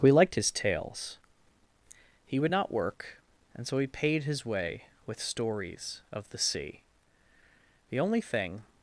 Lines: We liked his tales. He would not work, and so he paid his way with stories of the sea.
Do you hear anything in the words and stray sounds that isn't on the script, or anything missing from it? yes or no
yes